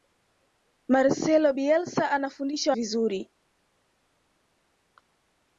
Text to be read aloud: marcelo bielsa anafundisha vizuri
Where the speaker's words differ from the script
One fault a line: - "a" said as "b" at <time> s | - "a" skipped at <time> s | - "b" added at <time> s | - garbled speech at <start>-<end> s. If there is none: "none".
none